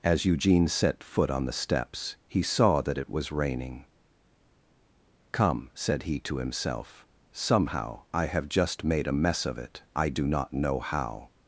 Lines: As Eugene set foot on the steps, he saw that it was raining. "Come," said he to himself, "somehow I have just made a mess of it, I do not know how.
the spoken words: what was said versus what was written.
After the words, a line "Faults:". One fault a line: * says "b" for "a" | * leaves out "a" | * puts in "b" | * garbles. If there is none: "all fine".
As Eugene set foot on the steps, he saw that it was raining. "Come," said he to himself, "somehow I have just made a mess of it, I do not know how.
Faults:
all fine